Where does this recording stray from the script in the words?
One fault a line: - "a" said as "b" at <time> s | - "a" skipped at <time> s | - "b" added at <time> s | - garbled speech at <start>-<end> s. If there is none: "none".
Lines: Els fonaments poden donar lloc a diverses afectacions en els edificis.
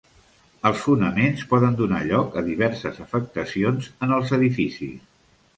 none